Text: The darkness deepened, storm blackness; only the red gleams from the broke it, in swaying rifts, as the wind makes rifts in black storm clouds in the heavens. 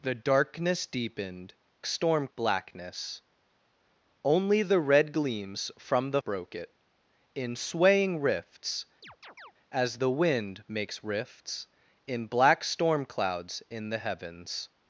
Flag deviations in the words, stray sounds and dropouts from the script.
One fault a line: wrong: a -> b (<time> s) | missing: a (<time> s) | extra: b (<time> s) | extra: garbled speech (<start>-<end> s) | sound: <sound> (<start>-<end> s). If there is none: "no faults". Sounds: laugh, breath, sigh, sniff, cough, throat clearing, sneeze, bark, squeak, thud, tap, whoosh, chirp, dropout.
sound: chirp (9.0-9.5 s)